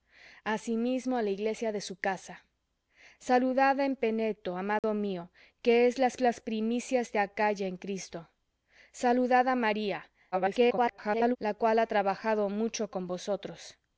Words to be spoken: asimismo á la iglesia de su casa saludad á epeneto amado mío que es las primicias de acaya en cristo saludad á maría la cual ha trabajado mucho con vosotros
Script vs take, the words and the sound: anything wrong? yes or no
yes